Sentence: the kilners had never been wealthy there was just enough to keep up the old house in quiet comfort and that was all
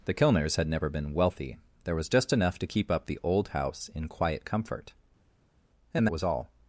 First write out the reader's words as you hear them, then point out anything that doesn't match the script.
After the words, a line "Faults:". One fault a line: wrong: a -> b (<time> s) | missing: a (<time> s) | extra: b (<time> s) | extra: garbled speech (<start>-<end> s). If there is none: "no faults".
the kilners had never been wealthy there was just enough to keep up the old house in quiet comfort and was all
Faults:
missing: that (6.1 s)